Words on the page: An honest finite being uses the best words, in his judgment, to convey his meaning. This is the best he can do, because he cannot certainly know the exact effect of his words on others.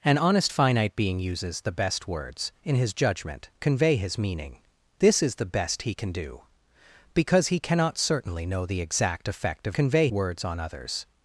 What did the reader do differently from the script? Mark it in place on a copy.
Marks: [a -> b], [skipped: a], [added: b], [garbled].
An honest finite being uses the best words, in his judgment, [skipped: to] convey his meaning. This is the best he can do, because he cannot certainly know the exact effect of [his -> convey] words on others.